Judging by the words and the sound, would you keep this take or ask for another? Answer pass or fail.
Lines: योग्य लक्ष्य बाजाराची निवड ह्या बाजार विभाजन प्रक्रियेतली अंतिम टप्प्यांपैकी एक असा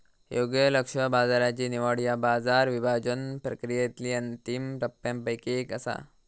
pass